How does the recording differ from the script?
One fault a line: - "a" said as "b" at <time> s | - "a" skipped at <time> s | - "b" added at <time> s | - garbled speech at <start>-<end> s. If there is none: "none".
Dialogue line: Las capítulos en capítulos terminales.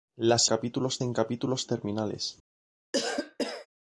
none